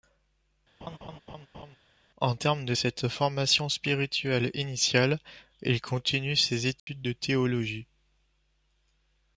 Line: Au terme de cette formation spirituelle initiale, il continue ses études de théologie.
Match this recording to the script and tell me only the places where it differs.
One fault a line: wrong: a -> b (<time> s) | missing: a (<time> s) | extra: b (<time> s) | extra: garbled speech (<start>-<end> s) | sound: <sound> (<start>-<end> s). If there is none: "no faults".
sound: laugh (0.8-1.8 s)
sound: dropout (6.8-6.9 s)